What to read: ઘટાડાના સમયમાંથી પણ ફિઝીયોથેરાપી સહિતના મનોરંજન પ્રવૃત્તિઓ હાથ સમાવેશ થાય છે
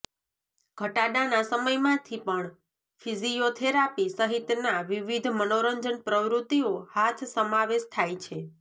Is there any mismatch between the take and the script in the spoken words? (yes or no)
yes